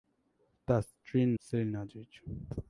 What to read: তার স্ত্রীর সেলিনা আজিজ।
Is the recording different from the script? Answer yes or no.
no